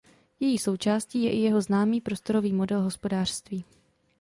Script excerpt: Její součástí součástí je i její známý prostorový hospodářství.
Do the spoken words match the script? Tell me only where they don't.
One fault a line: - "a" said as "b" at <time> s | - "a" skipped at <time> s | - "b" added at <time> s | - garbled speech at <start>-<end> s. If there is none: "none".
- "součástí" skipped at 1.2 s
- "její" said as "jeho" at 1.4 s
- "model" added at 2.5 s